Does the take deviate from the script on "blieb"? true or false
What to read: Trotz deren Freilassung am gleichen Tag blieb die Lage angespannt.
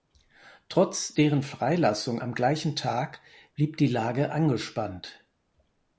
false